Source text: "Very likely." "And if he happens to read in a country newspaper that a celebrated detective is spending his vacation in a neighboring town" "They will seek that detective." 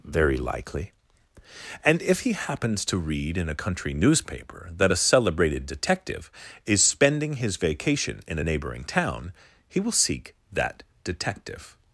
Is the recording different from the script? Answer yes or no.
yes